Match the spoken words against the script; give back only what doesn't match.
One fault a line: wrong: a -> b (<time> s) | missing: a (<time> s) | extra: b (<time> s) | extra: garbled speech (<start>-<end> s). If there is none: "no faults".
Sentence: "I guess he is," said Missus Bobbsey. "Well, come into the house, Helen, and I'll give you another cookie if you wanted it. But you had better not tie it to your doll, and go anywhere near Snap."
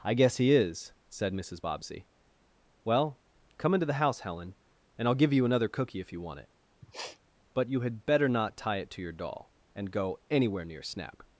wrong: wanted -> want (6.2 s)